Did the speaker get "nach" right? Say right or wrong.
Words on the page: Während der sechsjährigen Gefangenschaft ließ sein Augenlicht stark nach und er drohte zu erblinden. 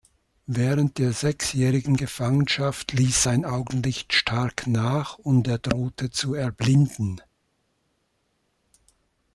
right